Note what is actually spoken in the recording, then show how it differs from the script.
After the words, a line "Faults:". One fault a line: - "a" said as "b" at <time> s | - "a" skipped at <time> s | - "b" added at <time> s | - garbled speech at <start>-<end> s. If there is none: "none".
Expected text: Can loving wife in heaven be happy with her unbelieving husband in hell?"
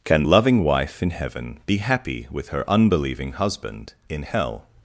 Can loving wife in heaven be happy with her unbelieving husband in hell?"
Faults:
none